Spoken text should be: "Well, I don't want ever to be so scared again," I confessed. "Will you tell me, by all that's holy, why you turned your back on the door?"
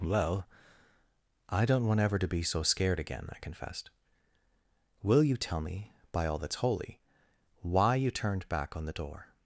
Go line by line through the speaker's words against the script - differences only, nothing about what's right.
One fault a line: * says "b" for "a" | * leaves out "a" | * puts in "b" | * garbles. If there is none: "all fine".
* leaves out "your"